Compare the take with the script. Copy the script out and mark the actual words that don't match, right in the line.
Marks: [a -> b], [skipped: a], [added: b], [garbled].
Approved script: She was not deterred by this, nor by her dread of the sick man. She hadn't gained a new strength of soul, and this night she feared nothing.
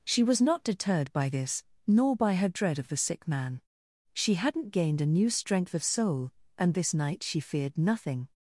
She was not deterred by this, nor by her dread of the sick man. She hadn't gained a new strength of soul, and this night she feared nothing.